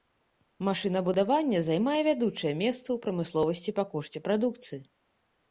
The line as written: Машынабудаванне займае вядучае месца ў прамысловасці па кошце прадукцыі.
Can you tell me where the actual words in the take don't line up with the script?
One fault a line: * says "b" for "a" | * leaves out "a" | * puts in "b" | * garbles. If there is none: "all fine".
all fine